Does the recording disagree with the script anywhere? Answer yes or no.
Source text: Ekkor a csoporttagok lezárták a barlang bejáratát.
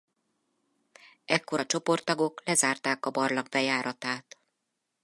no